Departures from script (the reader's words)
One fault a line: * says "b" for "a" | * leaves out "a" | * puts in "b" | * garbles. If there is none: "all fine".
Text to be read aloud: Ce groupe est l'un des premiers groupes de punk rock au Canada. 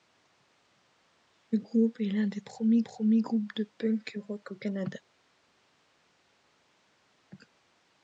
* puts in "premiers"